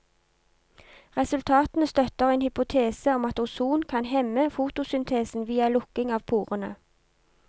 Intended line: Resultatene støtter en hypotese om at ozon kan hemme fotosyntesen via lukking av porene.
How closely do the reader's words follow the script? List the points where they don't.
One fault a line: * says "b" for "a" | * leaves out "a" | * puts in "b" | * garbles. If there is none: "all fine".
all fine